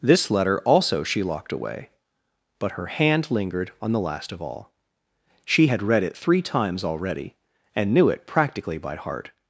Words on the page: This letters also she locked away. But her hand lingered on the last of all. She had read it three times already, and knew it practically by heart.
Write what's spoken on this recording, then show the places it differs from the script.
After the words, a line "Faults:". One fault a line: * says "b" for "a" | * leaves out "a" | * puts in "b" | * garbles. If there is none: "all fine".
This letter also she locked away. But her hand lingered on the last of all. She had read it three times already, and knew it practically by heart.
Faults:
* says "letter" for "letters"